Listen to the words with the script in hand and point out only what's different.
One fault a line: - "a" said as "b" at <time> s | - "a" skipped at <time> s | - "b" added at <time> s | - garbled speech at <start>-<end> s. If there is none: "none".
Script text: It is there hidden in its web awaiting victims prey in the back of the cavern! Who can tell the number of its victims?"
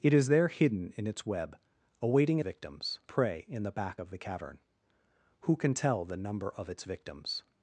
none